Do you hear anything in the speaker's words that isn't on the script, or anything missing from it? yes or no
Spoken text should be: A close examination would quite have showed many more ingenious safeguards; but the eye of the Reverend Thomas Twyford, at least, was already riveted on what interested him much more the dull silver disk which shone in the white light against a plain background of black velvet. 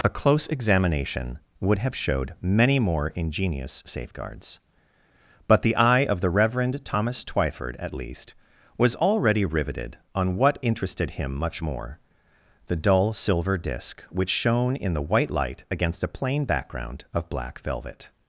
yes